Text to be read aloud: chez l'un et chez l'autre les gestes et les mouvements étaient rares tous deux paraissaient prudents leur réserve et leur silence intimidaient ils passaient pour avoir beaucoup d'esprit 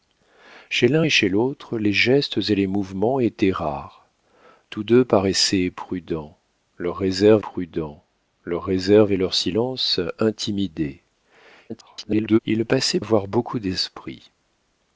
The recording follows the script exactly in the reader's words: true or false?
false